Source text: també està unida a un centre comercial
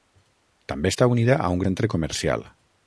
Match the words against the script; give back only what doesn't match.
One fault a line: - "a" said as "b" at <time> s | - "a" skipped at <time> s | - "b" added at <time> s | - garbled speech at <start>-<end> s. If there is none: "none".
none